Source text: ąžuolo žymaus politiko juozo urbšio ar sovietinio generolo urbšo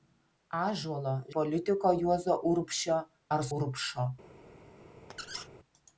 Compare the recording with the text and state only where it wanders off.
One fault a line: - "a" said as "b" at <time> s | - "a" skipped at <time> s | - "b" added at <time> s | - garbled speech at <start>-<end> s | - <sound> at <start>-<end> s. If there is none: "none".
- "žymaus" skipped at 1.1 s
- "sovietinio generolo" skipped at 3.5 s
- squeak at 5.1-5.5 s